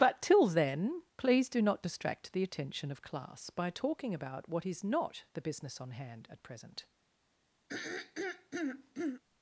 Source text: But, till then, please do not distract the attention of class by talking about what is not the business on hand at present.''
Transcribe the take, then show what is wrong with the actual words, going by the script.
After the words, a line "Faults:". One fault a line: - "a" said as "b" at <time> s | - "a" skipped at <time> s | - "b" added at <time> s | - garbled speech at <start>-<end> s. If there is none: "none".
But, till then, please do not distract the attention of class by talking about what is not the business on hand at present.''
Faults:
none